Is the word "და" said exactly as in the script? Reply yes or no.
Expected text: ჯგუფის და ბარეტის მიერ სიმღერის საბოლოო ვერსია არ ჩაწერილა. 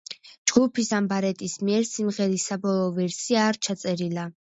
no